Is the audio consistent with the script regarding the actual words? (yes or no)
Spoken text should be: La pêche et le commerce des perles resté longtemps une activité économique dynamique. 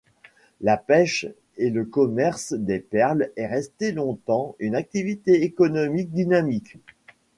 no